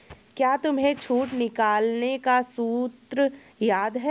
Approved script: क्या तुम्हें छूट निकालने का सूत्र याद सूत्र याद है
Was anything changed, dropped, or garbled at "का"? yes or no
no